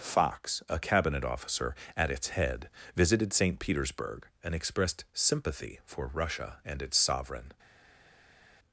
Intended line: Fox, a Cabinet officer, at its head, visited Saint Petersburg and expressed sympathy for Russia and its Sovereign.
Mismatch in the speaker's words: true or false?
false